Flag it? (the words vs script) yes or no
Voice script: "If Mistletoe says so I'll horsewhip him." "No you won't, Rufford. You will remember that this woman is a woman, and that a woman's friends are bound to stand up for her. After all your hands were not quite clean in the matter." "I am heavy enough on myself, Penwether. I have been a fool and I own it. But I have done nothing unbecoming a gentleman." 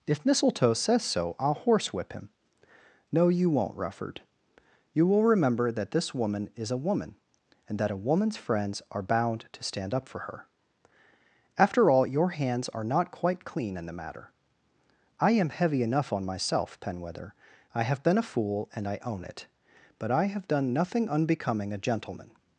yes